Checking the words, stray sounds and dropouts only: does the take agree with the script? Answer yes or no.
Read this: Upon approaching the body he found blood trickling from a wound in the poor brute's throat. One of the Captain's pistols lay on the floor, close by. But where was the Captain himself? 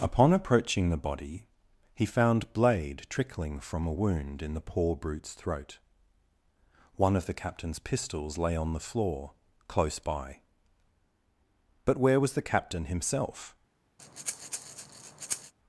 no